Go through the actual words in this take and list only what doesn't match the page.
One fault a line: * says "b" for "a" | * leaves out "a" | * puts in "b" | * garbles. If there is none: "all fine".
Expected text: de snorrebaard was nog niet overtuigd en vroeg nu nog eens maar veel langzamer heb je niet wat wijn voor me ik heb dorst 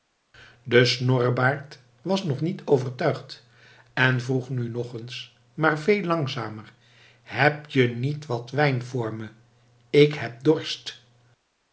all fine